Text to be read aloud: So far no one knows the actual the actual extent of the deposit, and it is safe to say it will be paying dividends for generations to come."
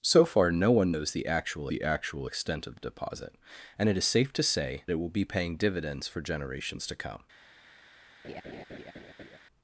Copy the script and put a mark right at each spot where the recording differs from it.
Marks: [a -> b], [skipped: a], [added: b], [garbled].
So far no one knows the actual the actual extent of the deposit, and it is safe to say it will be paying dividends for generations to come."